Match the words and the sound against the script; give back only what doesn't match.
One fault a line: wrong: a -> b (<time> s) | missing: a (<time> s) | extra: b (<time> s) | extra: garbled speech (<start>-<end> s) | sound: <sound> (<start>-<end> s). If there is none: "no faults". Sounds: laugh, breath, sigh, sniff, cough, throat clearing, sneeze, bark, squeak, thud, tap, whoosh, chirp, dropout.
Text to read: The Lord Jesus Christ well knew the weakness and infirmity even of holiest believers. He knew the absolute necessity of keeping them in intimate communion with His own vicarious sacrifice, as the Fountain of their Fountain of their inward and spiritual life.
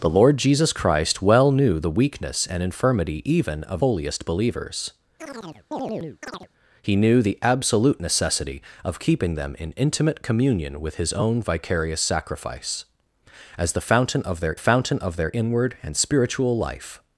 sound: chirp (5.2-6.5 s)